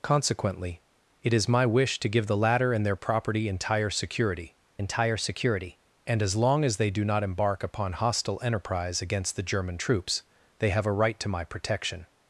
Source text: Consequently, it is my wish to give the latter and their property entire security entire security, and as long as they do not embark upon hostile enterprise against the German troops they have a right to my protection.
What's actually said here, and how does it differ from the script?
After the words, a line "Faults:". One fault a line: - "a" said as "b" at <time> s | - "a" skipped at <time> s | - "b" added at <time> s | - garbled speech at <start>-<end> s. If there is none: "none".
Consequently, it is my wish to give the latter and their property entire security entire security, and as long as they do not embark upon hostile enterprise against the German troops they have a right to my protection.
Faults:
none